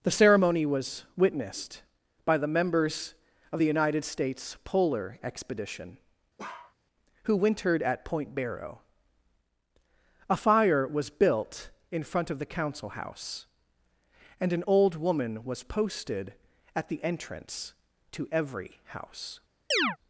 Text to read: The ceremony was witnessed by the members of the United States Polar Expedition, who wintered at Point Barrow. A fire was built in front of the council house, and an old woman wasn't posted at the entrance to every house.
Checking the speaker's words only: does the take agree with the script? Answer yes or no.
no